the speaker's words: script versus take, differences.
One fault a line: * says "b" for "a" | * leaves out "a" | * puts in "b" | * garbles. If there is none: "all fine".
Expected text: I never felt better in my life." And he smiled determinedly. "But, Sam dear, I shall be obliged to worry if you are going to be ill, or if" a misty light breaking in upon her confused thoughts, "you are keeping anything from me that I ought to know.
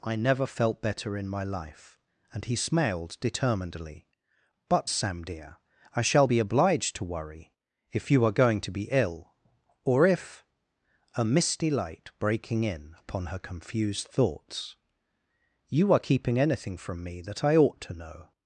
all fine